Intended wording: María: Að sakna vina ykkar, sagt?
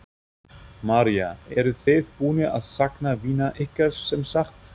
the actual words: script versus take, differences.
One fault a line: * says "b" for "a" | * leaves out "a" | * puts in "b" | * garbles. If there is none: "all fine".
* puts in "Eruð þið búnir"
* puts in "sem"